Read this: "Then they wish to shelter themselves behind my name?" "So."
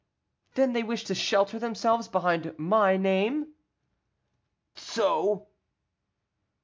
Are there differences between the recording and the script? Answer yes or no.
no